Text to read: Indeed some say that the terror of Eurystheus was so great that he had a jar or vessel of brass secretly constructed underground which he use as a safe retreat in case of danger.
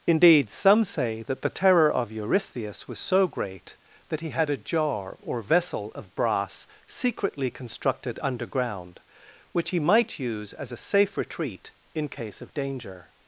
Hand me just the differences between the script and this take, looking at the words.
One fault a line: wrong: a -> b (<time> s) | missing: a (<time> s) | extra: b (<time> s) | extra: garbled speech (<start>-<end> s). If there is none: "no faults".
extra: might (9.8 s)